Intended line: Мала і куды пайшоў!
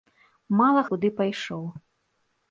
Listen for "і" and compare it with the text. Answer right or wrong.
right